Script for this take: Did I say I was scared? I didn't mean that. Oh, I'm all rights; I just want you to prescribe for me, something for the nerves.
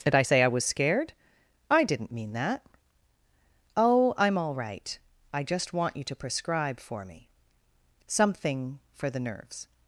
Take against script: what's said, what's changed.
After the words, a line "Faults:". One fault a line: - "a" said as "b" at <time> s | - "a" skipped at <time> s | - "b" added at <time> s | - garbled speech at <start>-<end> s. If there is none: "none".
Did I say I was scared? I didn't mean that. Oh, I'm all right; I just want you to prescribe for me, something for the nerves.
Faults:
- "rights" said as "right" at 4.5 s